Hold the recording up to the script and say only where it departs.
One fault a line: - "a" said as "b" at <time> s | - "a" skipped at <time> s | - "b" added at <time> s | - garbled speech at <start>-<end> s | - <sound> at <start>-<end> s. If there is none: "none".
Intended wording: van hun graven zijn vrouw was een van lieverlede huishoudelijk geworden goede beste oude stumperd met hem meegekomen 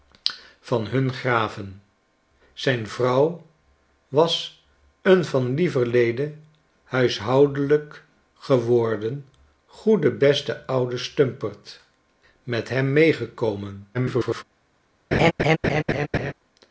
- garbled speech at 13.9-14.4 s
- laugh at 15.1-16.3 s